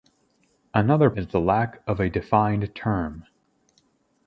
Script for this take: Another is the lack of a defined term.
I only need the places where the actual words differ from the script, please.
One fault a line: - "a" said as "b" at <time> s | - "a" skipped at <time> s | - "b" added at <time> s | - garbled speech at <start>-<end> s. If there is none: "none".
none